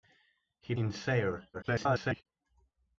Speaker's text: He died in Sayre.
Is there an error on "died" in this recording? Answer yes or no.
yes